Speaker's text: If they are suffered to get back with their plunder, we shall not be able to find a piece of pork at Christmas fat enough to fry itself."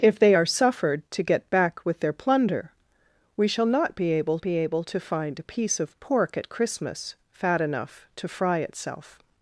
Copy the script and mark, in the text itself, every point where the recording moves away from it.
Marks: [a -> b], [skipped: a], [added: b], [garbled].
If they are suffered to get back with their plunder, we shall not be able [added: be able] to find a piece of pork at Christmas fat enough to fry itself."